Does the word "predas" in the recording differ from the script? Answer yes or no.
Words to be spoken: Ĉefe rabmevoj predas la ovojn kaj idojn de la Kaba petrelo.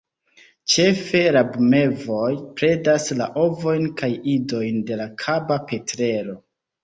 no